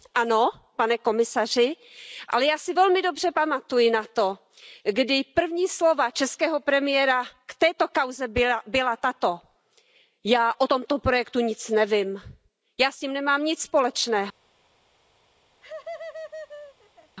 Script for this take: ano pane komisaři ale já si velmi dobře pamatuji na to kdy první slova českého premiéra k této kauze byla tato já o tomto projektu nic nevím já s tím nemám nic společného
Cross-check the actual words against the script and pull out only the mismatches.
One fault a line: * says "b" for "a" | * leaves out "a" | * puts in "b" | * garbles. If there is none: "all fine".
all fine